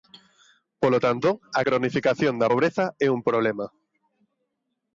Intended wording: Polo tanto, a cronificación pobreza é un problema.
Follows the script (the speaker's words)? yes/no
no